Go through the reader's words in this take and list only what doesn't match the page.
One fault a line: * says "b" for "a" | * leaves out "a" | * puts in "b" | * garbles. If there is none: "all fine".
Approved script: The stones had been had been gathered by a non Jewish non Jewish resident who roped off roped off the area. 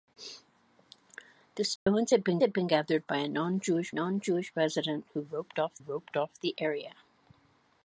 all fine